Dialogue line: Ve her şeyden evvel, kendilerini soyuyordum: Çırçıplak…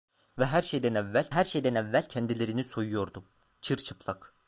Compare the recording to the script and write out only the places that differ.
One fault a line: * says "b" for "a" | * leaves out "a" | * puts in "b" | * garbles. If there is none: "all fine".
* puts in "her şeyden evvel"